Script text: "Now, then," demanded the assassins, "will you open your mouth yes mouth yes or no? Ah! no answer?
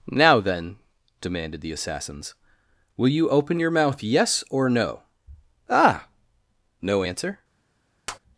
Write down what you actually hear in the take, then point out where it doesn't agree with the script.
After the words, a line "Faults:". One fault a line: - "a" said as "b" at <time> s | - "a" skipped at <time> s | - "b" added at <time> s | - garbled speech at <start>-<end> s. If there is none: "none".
"Now, then," demanded the assassins, "will you open your mouth yes or no? Ah! no answer?
Faults:
- "mouth yes" skipped at 4.4 s